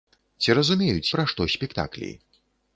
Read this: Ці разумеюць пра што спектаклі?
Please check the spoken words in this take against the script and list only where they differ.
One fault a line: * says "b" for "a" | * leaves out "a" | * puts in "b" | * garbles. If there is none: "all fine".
all fine